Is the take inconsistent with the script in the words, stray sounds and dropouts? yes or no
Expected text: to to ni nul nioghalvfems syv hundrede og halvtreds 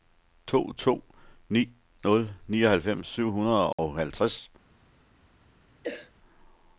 yes